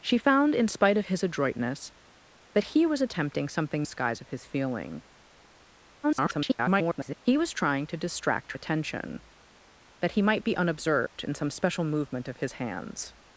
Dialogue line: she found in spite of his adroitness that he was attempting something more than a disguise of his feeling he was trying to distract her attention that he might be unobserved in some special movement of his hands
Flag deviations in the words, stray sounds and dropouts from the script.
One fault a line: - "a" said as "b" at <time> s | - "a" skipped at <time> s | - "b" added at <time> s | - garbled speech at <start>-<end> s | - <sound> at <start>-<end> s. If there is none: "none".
- "more than a" skipped at 3.9 s
- garbled speech at 6.0-7.2 s
- "her" skipped at 8.5 s
- dropout at 11.1-11.2 s